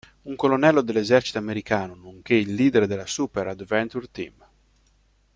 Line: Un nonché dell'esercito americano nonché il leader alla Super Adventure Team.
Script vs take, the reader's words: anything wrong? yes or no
yes